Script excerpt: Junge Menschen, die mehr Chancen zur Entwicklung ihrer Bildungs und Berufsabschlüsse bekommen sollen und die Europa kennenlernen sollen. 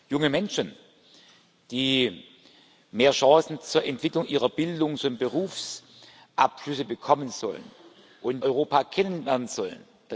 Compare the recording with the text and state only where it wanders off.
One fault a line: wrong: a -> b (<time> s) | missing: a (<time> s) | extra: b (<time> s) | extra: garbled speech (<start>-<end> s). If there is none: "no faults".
missing: die (8.4 s)